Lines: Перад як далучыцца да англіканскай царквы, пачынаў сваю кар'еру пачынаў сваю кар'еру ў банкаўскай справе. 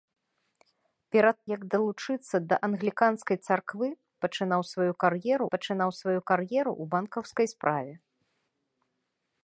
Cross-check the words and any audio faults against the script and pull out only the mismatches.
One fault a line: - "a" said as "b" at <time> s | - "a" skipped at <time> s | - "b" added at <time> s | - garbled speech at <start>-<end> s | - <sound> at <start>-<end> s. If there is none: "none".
none